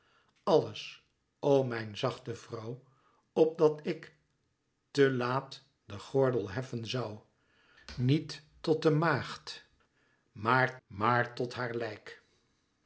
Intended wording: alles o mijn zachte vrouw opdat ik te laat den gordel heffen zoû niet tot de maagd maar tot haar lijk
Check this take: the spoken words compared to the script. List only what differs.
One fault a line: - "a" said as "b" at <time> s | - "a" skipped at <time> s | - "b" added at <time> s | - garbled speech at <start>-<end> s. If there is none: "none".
- "maar" added at 10.9 s